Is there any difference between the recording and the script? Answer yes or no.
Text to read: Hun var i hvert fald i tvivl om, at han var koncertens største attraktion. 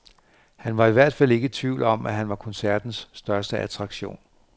yes